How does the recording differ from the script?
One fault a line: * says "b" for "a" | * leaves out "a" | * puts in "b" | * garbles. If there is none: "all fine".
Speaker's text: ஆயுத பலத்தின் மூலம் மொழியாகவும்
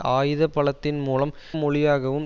all fine